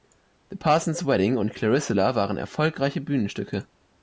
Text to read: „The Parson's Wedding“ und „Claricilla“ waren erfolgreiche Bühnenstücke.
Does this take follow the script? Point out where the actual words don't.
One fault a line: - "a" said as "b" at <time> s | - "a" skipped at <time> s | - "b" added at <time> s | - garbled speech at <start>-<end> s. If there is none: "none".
none